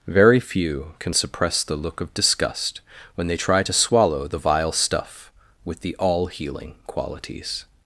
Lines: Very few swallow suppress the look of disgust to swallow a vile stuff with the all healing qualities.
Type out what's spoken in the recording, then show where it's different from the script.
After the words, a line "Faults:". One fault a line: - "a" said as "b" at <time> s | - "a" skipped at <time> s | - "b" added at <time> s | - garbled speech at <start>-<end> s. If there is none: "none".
Very few can suppress the look of disgust when they try to swallow the vile stuff with the all healing qualities.
Faults:
- "swallow" said as "can" at 1.0 s
- "when they try" added at 3.2 s
- "a" said as "the" at 4.3 s